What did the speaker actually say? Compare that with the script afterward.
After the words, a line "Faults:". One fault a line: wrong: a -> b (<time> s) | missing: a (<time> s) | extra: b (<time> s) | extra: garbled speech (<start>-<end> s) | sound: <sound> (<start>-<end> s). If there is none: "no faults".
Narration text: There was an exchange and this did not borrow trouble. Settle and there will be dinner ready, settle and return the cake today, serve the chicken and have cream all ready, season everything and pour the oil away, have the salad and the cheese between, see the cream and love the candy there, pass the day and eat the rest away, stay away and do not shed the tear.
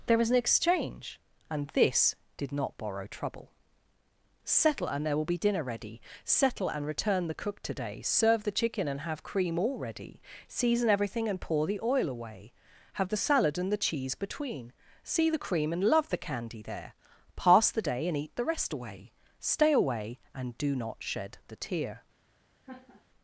There was an exchange and this did not borrow trouble. Settle and there will be dinner ready, settle and return the cook today, serve the chicken and have cream all ready, season everything and pour the oil away, have the salad and the cheese between, see the cream and love the candy there, pass the day and eat the rest away, stay away and do not shed the tear.
Faults:
wrong: cake -> cook (7.3 s)
sound: laugh (22.6-23.1 s)